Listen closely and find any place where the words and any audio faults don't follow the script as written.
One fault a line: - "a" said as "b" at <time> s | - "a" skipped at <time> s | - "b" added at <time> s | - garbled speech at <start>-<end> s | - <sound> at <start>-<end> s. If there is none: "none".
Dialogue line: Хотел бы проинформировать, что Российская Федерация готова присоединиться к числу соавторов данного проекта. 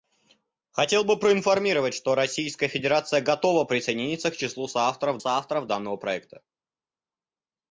- "соавторов" added at 5.2 s